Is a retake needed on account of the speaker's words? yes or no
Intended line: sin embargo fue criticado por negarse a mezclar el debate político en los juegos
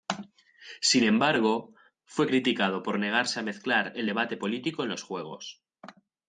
no